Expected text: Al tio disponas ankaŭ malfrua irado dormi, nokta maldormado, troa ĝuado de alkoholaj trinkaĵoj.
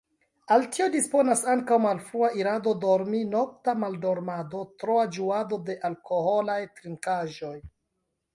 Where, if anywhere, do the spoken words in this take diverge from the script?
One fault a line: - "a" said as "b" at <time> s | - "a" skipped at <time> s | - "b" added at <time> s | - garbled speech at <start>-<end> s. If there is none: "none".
none